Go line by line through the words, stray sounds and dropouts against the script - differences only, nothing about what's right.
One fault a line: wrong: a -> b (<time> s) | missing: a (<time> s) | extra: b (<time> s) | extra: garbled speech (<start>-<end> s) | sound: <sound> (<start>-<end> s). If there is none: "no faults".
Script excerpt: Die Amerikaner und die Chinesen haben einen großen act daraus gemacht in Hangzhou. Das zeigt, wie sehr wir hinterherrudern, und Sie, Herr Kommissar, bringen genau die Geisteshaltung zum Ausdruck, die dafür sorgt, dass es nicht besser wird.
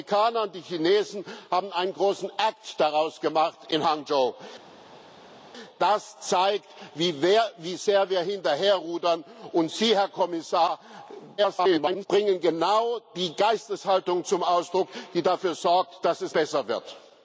extra: garbled speech (11.4-12.1 s)
missing: nicht (16.3 s)